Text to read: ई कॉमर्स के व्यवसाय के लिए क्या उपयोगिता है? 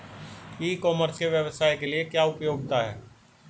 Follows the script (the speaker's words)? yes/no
yes